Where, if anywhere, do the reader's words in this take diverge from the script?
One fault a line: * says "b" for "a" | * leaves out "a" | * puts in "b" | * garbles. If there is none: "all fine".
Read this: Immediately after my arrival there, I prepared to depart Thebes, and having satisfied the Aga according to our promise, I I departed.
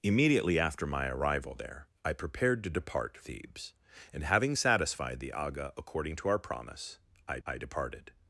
all fine